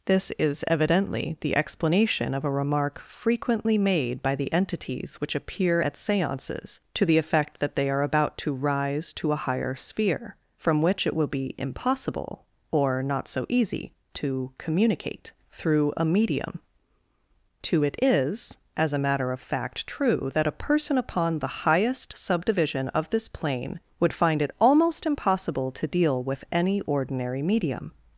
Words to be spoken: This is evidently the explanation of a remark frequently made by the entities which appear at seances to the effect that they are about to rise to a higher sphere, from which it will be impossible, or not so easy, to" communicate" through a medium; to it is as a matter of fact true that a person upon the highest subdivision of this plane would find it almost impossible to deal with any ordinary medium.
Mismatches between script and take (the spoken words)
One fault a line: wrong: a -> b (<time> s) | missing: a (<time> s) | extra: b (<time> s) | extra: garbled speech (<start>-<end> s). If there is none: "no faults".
no faults